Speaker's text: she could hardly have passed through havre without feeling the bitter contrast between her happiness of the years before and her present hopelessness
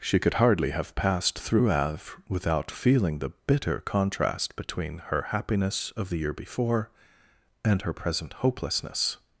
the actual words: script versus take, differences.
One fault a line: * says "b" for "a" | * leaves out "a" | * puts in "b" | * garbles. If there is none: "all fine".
* says "year" for "years"